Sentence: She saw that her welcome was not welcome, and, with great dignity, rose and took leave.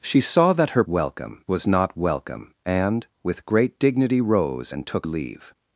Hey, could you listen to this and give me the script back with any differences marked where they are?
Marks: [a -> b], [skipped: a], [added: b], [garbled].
She saw that her welcome was not welcome, and, with great dignity, rose and took leave.